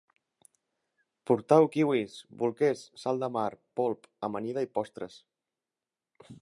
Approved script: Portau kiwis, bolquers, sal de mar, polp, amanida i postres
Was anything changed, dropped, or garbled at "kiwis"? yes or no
no